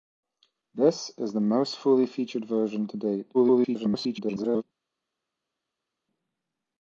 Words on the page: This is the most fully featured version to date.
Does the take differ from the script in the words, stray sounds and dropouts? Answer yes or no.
yes